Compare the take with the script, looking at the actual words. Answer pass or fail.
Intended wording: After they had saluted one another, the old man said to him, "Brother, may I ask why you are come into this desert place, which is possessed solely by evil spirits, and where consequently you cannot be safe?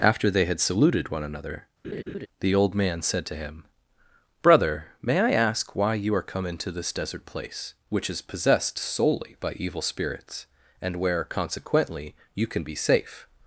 fail